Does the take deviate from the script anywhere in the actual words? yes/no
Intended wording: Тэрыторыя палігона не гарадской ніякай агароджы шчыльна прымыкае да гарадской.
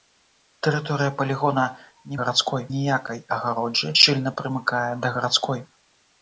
no